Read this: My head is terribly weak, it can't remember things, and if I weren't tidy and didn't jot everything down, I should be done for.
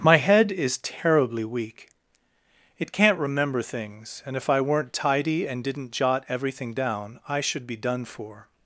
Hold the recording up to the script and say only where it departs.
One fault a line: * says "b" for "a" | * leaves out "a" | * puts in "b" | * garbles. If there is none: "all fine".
all fine